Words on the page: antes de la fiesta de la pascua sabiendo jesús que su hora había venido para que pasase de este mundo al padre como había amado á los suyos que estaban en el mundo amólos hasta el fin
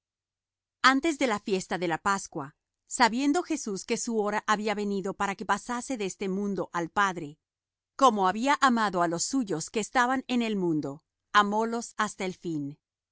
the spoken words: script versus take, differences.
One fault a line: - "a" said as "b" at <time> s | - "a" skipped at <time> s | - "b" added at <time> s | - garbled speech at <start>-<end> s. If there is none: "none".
none